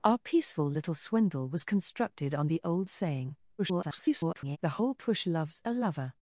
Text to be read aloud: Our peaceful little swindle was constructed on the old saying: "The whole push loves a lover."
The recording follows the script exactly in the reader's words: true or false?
false